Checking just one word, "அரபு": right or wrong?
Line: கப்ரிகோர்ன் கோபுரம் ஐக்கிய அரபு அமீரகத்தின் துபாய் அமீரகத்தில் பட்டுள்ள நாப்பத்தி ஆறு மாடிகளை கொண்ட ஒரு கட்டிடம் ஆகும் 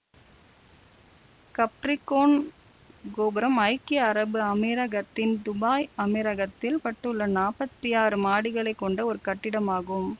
right